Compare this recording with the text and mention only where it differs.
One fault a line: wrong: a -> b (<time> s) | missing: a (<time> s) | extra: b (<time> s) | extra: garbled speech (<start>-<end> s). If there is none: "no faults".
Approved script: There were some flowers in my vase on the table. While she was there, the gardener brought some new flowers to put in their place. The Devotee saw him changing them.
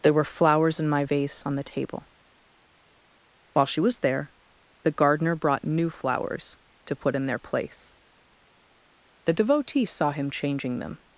missing: some (0.2 s)
missing: some (5.6 s)